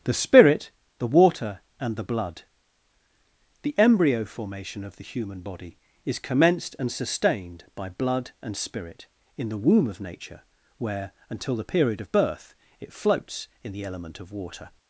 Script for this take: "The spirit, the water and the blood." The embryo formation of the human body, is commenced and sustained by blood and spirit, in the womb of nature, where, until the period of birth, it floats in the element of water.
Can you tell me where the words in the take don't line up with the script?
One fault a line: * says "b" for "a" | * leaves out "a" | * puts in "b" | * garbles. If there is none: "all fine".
all fine